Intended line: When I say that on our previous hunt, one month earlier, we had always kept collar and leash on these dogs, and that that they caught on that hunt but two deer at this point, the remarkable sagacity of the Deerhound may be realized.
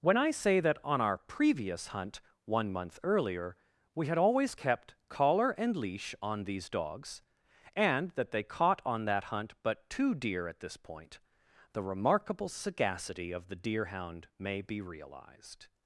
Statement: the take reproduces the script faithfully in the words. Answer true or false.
false